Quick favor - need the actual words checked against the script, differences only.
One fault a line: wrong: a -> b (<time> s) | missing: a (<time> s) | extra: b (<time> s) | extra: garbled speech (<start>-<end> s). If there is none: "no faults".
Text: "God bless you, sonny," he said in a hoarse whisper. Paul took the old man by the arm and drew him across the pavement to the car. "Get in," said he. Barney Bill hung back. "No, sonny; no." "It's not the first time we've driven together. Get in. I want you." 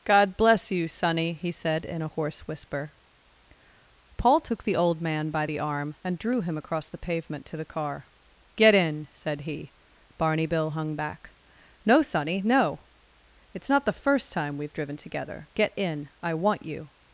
no faults